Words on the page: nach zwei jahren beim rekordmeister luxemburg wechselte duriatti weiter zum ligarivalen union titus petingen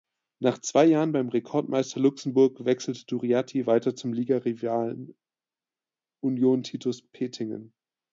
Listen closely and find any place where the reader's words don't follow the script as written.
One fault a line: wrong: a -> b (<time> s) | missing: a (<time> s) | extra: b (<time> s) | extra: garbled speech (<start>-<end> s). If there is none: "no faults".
no faults